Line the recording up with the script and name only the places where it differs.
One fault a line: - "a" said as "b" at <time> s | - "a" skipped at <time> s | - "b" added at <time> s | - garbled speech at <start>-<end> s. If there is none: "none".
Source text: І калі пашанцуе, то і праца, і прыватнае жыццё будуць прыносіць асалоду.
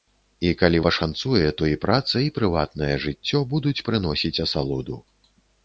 none